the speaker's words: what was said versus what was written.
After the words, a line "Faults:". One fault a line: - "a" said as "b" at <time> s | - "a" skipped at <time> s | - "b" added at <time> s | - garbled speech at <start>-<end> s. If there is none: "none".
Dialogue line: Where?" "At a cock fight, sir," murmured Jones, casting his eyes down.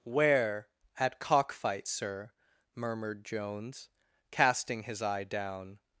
Where?" "At cock fight, sir," murmured Jones, casting his eye down.
Faults:
- "a" skipped at 1.2 s
- "eyes" said as "eye" at 5.0 s